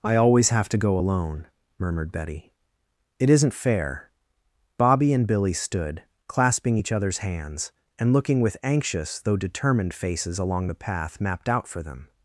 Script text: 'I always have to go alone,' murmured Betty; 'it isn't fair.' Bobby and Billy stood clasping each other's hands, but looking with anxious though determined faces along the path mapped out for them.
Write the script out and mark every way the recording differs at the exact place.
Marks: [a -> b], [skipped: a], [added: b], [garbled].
'I always have to go alone,' murmured Betty; 'it isn't fair.' Bobby and Billy stood clasping each other's hands, [but -> and] looking with anxious though determined faces along the path mapped out for them.